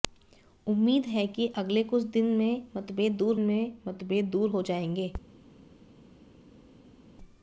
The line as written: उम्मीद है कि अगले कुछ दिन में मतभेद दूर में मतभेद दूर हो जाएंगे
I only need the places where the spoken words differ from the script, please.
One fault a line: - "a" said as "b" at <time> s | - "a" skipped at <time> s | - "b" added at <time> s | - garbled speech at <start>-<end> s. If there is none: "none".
none